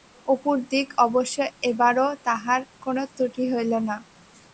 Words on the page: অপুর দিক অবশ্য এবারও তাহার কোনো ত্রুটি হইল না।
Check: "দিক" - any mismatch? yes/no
no